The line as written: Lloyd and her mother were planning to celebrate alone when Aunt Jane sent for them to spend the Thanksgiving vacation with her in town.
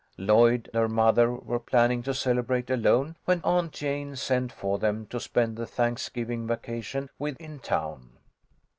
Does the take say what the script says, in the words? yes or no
no